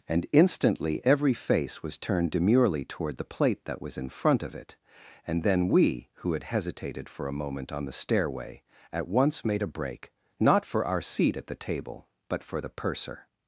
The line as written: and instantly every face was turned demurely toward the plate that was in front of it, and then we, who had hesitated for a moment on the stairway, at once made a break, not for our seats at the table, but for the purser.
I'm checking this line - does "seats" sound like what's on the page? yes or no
no